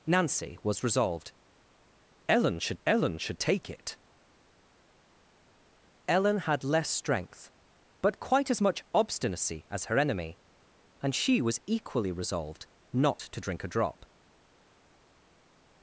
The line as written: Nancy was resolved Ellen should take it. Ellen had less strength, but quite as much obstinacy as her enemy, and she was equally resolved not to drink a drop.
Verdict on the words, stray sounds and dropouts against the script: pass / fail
fail